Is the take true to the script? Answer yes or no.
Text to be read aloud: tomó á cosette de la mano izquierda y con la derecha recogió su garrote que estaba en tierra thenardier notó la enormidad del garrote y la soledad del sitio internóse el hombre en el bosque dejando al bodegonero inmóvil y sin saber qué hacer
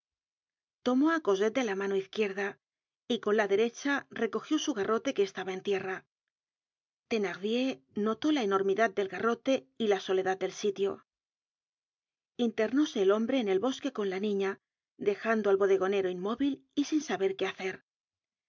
no